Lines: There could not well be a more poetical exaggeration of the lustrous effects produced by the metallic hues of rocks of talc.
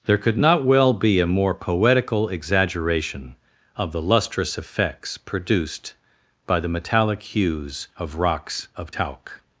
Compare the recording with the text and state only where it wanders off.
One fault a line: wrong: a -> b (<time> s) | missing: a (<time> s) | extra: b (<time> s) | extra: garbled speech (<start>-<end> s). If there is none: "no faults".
no faults